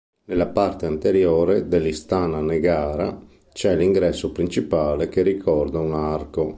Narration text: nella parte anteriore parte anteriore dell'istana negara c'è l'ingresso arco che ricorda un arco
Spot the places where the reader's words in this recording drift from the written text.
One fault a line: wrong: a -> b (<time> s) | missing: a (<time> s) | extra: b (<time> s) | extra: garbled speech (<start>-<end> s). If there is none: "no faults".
missing: parte anteriore (1.7 s)
wrong: arco -> principale (4.3 s)